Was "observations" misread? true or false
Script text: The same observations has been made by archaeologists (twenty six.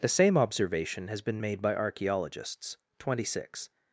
true